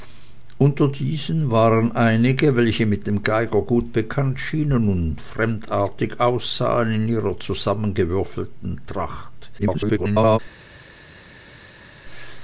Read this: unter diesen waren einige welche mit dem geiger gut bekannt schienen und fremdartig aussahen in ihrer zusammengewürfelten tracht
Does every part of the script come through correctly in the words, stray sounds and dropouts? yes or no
no